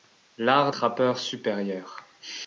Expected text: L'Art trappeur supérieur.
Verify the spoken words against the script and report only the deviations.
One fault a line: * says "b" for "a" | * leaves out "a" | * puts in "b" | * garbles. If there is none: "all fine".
all fine